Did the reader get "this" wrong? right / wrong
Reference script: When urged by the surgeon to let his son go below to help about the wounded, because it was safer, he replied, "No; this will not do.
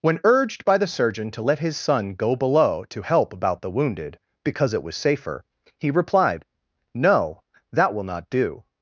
wrong